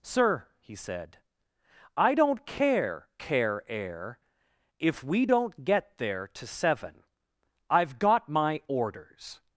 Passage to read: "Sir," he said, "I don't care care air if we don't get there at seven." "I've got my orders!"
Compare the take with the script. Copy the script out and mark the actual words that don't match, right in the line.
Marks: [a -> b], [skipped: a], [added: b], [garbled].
"Sir," he said, "I don't care care air if we don't get there [at -> to] seven." "I've got my orders!"